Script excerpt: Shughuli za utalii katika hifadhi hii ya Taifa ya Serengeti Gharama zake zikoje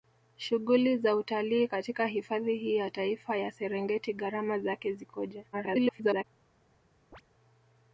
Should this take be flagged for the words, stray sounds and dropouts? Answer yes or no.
yes